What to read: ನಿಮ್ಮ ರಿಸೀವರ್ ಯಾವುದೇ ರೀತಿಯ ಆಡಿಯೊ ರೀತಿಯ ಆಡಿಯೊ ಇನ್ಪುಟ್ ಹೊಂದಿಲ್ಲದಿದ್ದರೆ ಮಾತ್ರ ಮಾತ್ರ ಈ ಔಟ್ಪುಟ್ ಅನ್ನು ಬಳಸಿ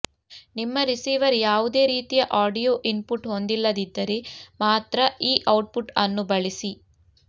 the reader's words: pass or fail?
fail